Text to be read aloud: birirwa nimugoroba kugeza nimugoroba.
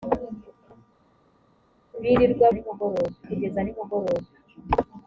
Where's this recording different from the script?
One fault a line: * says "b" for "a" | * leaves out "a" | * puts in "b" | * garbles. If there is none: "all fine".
all fine